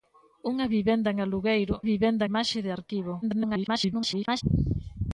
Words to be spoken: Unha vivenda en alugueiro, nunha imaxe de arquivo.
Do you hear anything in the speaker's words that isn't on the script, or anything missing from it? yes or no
yes